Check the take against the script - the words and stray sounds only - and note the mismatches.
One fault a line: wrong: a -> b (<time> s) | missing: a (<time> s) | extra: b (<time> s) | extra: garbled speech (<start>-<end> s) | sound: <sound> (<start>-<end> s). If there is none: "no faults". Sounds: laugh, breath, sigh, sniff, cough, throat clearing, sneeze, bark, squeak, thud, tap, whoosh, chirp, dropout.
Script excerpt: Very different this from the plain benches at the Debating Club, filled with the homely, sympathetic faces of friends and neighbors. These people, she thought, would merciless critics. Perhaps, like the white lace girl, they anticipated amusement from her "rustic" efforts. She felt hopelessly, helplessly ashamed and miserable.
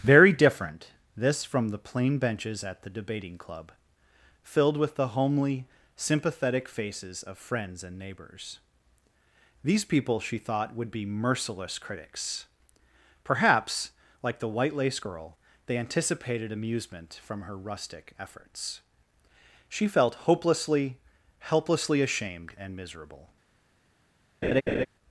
extra: be (10.9 s)
sound: laugh (24.4-24.9 s)